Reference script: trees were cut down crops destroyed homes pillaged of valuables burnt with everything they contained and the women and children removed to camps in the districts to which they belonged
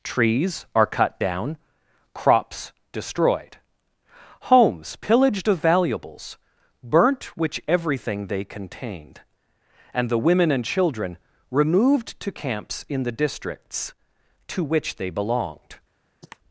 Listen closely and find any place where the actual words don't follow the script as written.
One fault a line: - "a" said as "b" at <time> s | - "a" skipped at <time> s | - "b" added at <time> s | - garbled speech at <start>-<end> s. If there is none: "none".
- "were" said as "are" at 0.7 s
- "with" said as "which" at 7.4 s